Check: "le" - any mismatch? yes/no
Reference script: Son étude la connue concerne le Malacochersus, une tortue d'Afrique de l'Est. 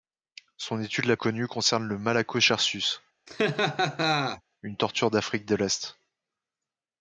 no